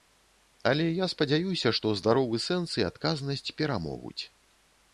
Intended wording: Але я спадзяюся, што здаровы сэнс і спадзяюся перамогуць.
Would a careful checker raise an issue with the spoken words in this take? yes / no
yes